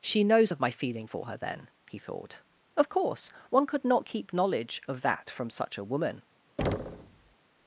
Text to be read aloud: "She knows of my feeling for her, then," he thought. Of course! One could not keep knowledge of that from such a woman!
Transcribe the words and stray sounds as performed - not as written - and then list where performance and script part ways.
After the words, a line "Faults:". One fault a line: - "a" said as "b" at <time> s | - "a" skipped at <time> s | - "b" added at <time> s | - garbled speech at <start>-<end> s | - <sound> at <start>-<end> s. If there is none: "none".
"She knows of my feeling for her, then," he thought. Of course! One could not keep knowledge of that from such a woman!
Faults:
- thud at 6.6-7.4 s